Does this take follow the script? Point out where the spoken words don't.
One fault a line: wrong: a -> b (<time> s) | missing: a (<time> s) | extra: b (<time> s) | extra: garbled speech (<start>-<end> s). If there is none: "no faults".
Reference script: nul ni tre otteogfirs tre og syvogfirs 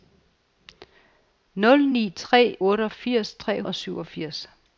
no faults